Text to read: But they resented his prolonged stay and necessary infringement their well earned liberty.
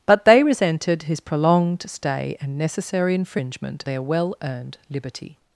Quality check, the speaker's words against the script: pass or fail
pass